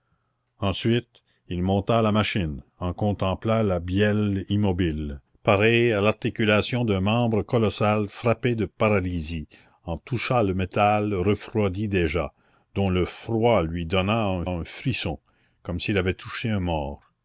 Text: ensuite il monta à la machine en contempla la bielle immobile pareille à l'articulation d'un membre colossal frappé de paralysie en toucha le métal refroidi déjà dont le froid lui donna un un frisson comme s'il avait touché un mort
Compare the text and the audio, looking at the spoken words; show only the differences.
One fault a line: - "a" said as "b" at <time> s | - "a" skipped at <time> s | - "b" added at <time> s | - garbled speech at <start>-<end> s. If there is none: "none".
none